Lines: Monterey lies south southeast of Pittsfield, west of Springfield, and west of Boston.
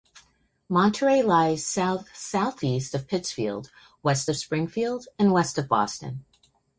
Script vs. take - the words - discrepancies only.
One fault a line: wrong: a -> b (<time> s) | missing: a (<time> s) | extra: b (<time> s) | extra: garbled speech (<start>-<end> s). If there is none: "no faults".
no faults